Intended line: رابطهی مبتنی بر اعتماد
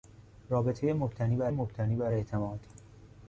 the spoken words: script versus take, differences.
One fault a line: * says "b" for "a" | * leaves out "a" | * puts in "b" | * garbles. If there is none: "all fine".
* puts in "مبتنی بر"